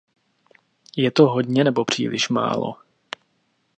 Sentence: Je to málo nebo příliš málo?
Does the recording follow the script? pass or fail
fail